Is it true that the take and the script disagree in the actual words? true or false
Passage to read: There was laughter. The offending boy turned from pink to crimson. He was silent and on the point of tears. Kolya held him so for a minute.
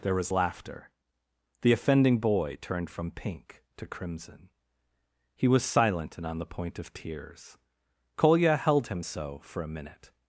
false